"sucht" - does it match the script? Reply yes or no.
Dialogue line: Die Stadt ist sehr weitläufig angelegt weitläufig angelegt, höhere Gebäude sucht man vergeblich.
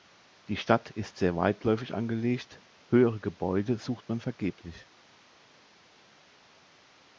yes